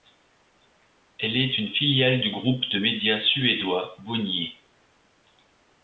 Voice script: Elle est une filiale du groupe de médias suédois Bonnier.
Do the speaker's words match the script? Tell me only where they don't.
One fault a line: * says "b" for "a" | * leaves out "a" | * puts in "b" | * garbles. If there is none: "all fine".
all fine